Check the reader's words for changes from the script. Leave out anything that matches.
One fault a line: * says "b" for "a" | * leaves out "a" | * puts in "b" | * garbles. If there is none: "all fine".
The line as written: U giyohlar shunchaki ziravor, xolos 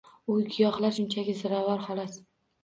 all fine